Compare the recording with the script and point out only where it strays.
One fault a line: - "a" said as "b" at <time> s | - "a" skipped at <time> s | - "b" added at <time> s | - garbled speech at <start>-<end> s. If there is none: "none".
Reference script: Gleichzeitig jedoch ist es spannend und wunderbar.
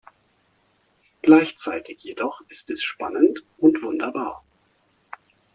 none